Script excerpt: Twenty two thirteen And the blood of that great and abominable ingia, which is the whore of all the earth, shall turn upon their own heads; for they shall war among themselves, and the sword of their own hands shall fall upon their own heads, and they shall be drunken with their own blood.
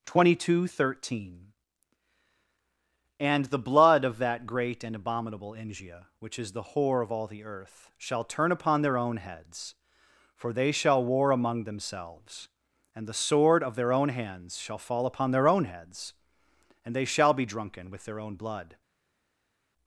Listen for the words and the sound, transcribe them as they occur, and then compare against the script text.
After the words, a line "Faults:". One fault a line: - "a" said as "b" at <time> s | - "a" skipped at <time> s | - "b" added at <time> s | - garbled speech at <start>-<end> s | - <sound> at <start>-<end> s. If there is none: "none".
Twenty two thirteen And the blood of that great and abominable ingia, which is the whore of all the earth, shall turn upon their own heads; for they shall war among themselves, and the sword of their own hands shall fall upon their own heads, and they shall be drunken with their own blood.
Faults:
none